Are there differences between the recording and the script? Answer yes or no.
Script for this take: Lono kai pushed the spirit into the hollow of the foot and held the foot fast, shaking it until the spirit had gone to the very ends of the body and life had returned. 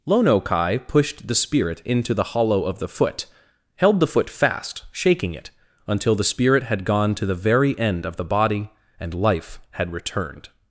yes